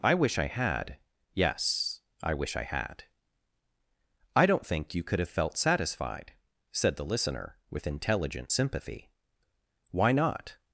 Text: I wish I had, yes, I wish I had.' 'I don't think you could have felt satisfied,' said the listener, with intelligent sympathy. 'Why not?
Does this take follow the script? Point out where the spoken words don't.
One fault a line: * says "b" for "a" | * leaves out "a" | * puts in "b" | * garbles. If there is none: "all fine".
all fine